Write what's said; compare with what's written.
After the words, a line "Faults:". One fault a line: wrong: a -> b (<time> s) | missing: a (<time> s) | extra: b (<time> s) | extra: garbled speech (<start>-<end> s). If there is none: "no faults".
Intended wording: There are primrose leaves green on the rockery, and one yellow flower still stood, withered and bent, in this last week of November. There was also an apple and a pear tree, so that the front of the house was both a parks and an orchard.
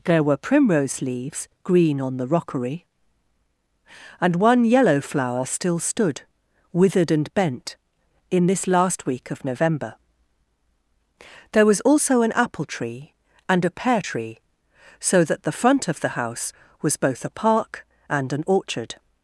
There were primrose leaves green on the rockery, and one yellow flower still stood, withered and bent, in this last week of November. There was also an apple tree and a pear tree, so that the front of the house was both a park and an orchard.
Faults:
wrong: are -> were (0.2 s)
extra: tree (12.6 s)
wrong: parks -> park (17.3 s)